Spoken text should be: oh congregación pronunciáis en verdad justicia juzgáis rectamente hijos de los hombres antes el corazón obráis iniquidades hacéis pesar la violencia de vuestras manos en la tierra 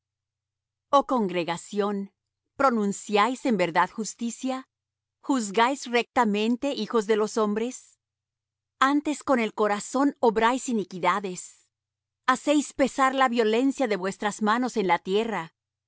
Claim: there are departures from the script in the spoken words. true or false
true